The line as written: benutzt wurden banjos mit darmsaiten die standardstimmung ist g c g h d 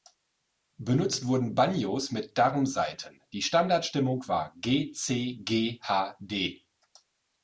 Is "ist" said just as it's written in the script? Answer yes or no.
no